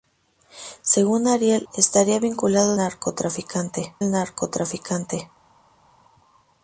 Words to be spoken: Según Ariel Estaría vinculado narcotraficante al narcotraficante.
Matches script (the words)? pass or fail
pass